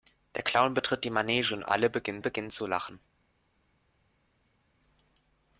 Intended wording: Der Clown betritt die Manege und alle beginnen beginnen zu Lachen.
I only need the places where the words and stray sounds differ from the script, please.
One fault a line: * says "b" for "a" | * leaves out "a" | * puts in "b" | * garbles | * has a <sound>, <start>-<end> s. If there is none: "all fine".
all fine